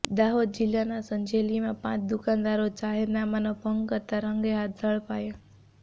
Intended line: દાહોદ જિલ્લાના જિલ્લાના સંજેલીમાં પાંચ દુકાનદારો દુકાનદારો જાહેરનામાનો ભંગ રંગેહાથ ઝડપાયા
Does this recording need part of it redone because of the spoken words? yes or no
yes